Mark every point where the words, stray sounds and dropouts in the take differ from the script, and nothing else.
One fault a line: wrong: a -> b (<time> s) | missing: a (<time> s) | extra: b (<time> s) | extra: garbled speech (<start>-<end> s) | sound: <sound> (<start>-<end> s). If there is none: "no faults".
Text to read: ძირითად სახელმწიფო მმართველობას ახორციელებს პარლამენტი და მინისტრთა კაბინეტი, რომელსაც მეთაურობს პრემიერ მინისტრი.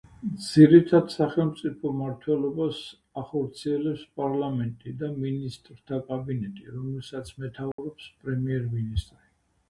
sound: dropout (7.7-7.8 s)